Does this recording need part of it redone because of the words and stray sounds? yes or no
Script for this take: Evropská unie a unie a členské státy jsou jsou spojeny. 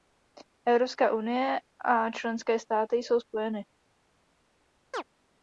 yes